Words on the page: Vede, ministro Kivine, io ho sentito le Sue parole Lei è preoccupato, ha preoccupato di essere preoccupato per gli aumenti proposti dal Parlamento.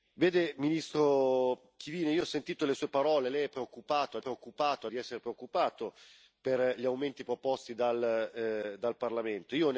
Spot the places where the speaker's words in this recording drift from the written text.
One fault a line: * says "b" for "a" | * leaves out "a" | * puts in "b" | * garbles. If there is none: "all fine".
all fine